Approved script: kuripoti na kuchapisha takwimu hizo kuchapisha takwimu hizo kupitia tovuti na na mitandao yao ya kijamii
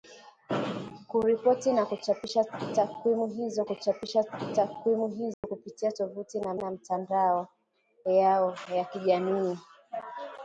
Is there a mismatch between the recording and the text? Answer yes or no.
no